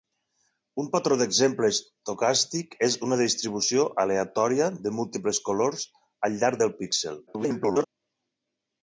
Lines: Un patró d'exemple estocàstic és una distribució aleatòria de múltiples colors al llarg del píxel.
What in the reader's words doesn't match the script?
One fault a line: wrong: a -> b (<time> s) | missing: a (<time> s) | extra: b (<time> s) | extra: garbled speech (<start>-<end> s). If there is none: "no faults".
extra: garbled speech (7.3-7.8 s)